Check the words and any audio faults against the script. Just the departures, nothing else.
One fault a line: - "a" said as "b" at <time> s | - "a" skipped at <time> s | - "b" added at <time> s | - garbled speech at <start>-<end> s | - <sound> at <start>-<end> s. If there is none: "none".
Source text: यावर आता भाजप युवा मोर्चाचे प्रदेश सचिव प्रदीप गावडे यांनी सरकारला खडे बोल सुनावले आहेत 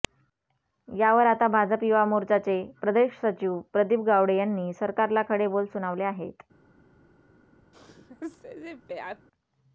- sneeze at 7.7-9.3 s